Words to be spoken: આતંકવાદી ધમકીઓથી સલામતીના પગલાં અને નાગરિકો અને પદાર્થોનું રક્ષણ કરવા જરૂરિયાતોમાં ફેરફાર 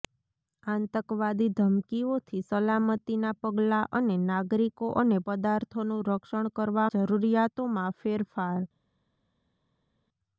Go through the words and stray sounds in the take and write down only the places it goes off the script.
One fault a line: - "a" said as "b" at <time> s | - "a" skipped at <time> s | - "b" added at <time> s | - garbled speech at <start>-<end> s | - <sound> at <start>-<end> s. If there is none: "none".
none